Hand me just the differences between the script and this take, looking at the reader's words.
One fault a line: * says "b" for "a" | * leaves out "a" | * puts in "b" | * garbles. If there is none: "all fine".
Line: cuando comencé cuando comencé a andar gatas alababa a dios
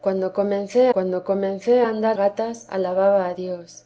all fine